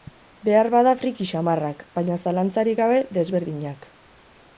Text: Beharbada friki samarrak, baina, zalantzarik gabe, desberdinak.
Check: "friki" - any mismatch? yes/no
no